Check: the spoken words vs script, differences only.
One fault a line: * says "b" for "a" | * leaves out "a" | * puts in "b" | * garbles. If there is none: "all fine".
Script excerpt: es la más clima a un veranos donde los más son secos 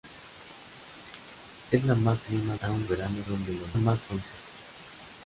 all fine